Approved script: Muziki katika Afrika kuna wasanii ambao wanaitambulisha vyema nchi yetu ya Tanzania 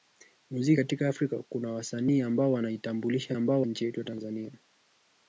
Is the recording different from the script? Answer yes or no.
yes